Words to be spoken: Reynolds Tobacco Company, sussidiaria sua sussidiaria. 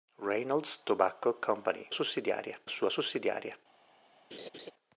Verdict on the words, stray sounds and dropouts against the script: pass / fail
fail